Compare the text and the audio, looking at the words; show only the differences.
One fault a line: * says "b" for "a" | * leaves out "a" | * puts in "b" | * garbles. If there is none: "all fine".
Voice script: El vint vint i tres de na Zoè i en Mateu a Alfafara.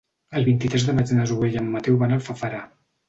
* leaves out "vint"
* puts in "maig"
* puts in "van"